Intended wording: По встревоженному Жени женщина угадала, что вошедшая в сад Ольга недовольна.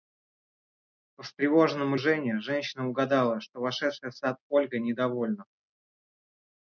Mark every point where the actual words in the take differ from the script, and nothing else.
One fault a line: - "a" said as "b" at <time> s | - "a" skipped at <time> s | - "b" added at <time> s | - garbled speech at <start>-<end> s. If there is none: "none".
none